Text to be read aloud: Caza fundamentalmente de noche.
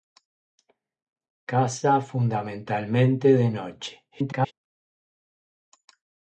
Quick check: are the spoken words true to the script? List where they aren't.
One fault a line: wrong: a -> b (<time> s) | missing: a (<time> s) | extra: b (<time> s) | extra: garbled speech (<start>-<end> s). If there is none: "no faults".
extra: garbled speech (4.1-4.5 s)